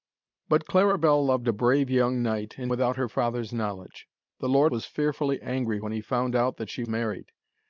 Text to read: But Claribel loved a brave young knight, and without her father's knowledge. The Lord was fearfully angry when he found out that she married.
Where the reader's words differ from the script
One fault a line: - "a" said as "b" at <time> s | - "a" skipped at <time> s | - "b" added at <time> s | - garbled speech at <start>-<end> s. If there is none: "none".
none